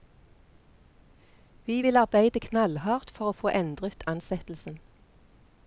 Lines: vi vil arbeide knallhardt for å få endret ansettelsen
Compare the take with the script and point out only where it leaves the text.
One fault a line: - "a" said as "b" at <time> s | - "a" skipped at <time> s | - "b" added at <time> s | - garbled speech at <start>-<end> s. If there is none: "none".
none